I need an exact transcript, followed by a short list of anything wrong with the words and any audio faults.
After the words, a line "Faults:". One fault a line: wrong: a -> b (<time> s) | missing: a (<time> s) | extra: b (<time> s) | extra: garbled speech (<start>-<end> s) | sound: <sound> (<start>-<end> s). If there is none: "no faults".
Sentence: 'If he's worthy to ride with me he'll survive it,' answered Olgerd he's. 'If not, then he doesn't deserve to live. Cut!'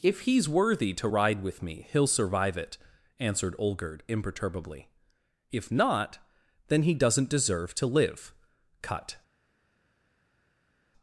'If he's worthy to ride with me he'll survive it,' answered Olgerd imperturbably. 'If not, then he doesn't deserve to live. Cut!'
Faults:
wrong: he's -> imperturbably (4.1 s)